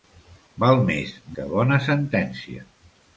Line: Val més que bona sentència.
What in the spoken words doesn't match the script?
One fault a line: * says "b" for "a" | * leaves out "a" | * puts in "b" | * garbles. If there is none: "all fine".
all fine